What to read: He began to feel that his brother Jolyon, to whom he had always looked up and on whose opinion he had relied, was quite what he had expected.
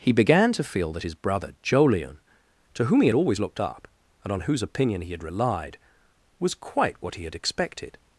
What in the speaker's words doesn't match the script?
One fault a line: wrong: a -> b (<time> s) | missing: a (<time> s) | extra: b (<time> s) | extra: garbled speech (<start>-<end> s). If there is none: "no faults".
no faults